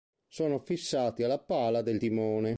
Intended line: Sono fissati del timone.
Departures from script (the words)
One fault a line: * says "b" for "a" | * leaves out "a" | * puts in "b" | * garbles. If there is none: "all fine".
* puts in "alla pala"